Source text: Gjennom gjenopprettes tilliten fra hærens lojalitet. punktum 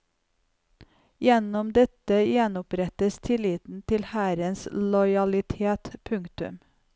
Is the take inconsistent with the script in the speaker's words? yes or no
yes